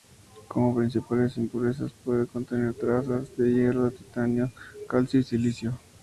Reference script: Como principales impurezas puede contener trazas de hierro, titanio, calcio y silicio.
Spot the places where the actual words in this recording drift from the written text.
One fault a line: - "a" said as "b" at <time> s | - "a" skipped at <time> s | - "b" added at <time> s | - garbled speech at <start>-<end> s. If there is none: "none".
none